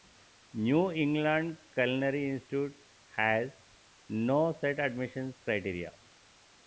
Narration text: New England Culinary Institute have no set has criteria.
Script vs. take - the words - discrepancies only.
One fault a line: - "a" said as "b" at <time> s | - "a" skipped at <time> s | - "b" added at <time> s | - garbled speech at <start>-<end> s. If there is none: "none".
- "have" said as "has" at 3.1 s
- "has" said as "admissions" at 4.8 s